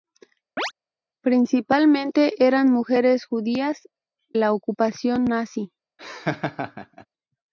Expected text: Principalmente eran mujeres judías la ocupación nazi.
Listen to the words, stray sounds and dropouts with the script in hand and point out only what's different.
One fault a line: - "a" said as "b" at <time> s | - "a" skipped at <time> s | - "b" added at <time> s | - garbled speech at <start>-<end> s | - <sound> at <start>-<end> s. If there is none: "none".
- chirp at 0.6-0.7 s
- laugh at 6.0-7.1 s